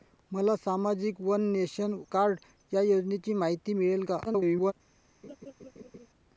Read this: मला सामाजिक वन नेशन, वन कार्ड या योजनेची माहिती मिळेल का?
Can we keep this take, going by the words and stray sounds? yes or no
no